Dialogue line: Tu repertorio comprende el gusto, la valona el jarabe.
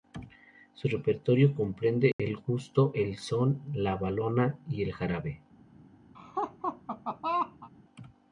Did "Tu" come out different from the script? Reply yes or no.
yes